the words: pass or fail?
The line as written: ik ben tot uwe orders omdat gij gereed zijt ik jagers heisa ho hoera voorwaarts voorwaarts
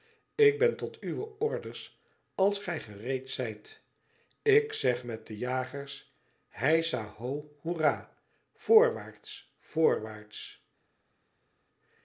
fail